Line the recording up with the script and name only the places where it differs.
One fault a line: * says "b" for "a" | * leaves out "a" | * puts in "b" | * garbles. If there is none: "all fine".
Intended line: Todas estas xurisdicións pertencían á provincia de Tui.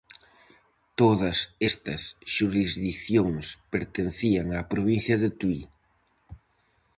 all fine